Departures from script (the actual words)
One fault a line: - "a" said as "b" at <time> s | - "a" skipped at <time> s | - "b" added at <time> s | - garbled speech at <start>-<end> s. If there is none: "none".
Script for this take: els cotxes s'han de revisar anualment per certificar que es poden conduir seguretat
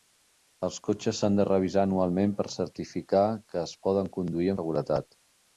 none